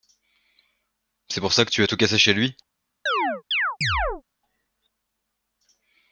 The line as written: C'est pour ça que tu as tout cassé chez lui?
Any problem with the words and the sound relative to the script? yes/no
yes